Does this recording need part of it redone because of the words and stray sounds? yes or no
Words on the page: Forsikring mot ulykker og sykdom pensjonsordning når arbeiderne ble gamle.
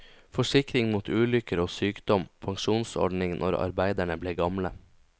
no